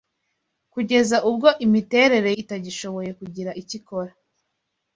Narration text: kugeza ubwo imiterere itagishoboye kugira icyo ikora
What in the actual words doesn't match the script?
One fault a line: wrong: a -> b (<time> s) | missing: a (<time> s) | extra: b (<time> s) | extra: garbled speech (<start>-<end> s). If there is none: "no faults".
no faults